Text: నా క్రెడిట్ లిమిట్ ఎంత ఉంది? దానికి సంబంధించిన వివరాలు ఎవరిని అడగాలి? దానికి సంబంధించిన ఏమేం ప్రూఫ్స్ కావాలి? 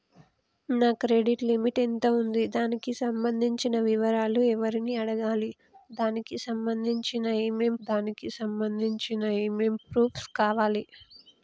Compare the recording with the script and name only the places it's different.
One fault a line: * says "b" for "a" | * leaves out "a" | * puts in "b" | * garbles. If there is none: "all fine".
* puts in "దానికి సంబంధించిన ఏమేం"